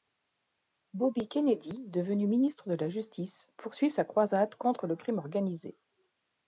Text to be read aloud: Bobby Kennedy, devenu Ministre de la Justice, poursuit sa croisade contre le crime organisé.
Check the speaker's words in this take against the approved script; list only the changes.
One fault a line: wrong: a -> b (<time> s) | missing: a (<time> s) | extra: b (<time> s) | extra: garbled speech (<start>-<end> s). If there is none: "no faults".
no faults